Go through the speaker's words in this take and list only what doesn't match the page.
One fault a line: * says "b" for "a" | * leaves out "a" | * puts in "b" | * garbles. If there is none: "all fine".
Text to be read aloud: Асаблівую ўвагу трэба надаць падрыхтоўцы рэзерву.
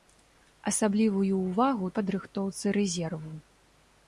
* leaves out "трэба надаць"